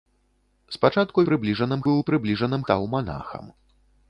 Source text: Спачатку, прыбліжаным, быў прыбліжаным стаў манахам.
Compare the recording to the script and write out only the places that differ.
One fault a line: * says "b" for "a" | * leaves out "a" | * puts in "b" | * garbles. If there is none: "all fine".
all fine